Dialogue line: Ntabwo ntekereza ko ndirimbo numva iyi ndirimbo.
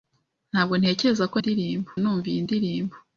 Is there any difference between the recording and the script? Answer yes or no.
no